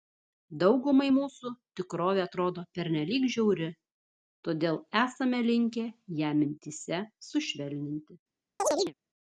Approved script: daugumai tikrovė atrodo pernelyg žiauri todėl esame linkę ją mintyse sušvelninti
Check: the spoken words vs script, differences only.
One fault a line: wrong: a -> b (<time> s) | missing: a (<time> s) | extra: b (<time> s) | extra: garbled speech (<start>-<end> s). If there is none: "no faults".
extra: mūsų (1.1 s)